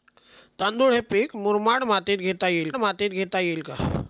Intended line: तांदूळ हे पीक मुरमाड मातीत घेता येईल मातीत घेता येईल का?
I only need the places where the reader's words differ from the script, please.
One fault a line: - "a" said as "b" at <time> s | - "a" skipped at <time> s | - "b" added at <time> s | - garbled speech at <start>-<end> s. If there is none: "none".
none